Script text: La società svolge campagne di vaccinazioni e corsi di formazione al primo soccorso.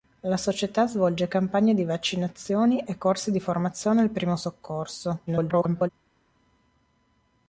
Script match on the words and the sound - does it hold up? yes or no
no